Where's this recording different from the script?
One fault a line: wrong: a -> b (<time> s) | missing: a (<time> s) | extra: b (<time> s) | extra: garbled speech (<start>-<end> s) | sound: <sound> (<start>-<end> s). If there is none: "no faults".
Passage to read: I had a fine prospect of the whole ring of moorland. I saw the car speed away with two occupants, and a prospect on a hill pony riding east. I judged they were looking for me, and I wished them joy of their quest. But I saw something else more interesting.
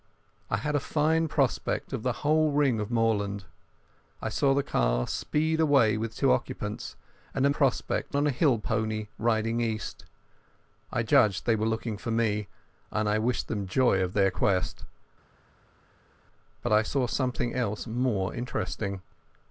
no faults